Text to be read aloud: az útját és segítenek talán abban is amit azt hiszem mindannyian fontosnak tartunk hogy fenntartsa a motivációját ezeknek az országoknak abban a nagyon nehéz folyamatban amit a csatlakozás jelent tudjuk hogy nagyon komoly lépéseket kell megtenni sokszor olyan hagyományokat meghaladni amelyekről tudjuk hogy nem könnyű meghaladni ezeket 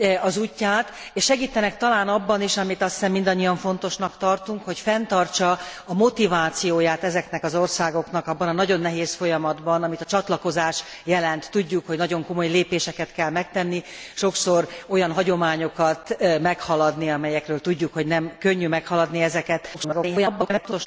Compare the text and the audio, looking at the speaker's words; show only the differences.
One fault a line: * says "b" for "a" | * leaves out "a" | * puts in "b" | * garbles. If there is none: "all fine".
* garbles